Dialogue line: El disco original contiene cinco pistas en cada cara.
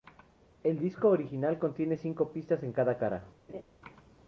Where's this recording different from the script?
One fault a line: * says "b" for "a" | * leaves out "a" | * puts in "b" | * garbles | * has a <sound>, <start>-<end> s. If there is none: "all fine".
* has a laugh, 3.5-3.6 s